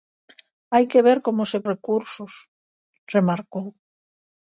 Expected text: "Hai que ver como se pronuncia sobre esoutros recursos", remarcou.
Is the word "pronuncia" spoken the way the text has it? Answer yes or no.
no